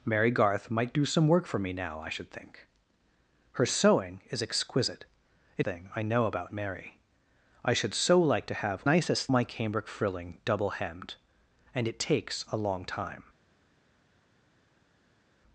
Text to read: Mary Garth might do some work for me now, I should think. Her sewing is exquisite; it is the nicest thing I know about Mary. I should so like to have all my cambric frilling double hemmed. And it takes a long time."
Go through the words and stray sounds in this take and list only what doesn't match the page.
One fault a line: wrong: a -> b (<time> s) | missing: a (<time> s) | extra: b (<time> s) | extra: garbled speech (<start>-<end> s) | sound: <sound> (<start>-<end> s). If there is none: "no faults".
missing: is the nicest (5.7 s)
wrong: all -> nicest (8.9 s)